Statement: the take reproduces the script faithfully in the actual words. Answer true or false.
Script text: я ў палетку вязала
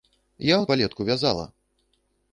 true